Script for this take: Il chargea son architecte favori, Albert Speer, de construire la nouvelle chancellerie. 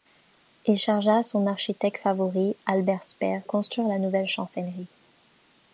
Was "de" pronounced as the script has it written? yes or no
no